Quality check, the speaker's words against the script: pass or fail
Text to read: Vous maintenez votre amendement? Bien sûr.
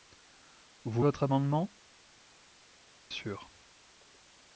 fail